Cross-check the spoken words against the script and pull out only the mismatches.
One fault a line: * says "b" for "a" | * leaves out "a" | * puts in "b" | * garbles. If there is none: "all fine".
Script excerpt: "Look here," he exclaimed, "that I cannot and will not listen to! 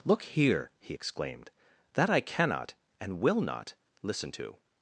all fine